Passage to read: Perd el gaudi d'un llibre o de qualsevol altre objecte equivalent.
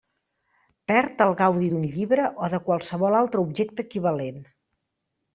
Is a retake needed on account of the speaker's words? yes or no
no